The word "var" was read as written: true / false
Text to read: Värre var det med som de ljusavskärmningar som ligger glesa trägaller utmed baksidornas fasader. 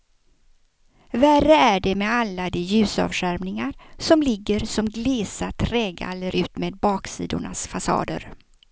false